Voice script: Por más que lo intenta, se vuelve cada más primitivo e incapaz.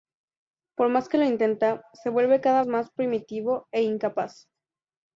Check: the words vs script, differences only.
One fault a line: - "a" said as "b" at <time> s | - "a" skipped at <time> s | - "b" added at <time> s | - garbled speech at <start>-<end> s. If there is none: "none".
none